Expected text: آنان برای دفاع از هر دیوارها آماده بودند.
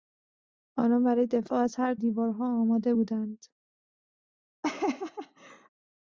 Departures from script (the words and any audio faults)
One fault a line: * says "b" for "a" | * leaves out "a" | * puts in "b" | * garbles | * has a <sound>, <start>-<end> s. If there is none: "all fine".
* has a laugh, 4.6-5.7 s